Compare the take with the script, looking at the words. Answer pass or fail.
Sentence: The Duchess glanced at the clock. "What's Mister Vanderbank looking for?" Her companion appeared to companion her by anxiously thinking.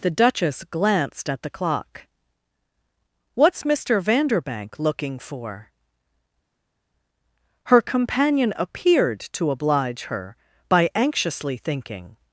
fail